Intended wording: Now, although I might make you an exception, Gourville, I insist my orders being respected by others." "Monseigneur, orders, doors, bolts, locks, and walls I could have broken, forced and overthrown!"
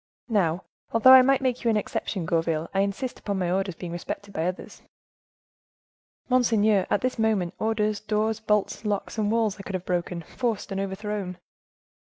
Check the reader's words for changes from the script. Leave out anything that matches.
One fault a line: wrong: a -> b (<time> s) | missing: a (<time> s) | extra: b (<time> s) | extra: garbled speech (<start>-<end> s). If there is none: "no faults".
extra: upon (3.2 s)
extra: at this moment (6.9 s)